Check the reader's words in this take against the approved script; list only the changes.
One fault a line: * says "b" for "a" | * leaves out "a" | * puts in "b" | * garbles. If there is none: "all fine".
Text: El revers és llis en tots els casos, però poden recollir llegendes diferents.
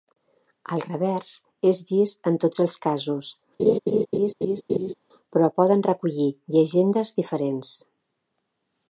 all fine